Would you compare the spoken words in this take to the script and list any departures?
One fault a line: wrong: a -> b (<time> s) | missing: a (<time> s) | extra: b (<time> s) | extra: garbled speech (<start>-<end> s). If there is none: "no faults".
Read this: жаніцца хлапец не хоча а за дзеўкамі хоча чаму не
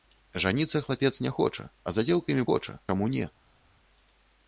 no faults